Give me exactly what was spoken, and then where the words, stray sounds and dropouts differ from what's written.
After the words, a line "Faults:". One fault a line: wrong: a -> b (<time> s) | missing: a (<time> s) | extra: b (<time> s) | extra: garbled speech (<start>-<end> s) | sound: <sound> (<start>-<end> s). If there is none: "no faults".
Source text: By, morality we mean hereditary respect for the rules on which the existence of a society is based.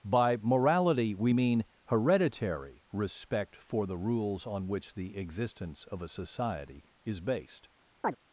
By, morality we mean hereditary respect for the rules on which the existence of a society is based.
Faults:
sound: chirp (8.0-8.2 s)